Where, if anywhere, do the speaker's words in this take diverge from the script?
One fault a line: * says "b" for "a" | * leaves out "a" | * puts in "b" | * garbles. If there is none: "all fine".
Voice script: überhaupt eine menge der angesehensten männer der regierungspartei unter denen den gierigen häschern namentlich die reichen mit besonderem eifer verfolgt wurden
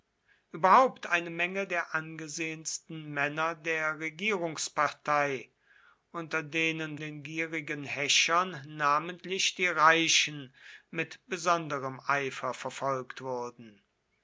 all fine